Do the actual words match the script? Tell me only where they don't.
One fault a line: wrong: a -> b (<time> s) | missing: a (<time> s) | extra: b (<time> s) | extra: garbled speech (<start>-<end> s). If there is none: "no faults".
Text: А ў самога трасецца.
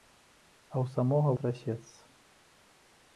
no faults